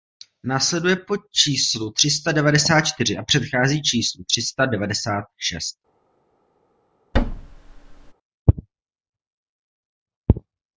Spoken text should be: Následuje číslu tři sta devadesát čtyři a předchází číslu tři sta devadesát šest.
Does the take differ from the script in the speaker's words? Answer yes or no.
yes